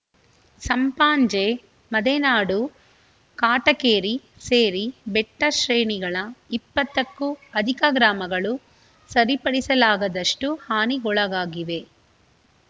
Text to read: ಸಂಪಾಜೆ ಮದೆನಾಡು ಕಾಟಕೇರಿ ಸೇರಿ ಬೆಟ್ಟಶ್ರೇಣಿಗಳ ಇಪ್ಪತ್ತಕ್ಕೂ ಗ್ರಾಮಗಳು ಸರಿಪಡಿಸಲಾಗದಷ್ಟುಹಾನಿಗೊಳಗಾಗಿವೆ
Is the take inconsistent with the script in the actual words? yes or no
yes